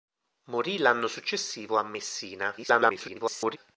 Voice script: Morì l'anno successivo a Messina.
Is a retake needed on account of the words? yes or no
yes